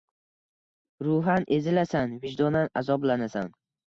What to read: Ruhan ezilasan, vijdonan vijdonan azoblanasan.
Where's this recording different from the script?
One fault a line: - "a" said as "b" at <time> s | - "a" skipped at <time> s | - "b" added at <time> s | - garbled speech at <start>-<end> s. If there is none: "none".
- "vijdonan" skipped at 2.7 s